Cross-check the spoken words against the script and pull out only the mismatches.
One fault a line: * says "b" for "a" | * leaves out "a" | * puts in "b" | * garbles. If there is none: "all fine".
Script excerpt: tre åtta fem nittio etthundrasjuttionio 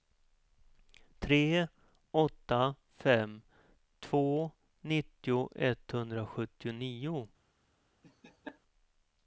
* puts in "två"